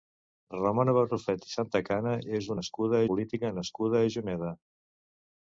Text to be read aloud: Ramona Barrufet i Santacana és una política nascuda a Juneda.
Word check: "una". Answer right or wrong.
wrong